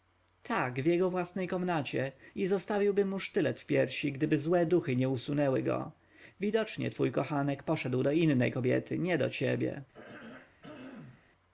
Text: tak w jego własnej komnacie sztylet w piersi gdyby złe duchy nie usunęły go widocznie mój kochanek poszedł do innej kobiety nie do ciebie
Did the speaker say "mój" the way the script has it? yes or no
no